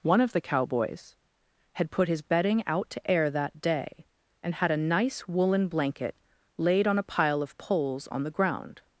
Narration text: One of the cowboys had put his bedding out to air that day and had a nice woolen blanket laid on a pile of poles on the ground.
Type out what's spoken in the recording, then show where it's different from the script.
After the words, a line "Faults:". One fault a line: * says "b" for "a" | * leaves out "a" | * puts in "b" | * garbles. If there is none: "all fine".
One of the cowboys had put his bedding out to air that day and had a nice woolen blanket laid on a pile of poles on the ground.
Faults:
all fine